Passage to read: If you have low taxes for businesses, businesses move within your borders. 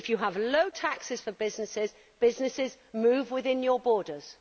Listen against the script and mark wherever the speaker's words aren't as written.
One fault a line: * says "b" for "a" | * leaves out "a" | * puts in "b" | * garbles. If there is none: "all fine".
all fine